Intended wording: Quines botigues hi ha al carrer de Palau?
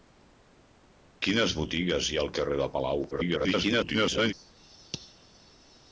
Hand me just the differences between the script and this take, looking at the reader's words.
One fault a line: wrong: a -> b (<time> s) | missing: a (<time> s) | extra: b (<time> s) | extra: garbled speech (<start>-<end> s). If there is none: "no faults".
extra: garbled speech (3.1-4.3 s)